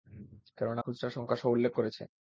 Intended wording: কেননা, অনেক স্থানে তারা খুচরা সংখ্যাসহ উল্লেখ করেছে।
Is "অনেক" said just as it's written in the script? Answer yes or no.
no